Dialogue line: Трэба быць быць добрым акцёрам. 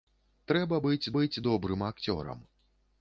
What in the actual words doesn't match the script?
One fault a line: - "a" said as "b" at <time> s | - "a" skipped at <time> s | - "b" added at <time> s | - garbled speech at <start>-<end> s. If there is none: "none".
none